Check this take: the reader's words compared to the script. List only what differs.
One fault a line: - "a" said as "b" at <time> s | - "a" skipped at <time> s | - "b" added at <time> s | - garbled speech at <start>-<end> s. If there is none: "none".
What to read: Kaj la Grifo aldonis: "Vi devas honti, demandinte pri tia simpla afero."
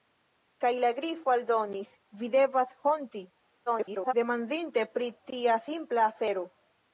- garbled speech at 3.7-4.1 s